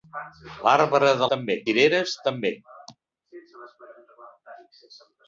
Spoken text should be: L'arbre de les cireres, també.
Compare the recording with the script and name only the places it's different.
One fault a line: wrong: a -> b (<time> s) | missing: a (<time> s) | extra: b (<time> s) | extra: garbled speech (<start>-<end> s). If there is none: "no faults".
wrong: les -> també (1.3 s)